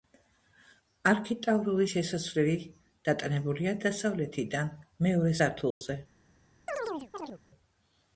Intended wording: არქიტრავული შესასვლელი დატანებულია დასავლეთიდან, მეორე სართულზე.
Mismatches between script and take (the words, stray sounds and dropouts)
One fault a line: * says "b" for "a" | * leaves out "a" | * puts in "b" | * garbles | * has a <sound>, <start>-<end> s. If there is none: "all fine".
* has a dropout, 5.7-5.8 s
* has a chirp, 6.7-7.4 s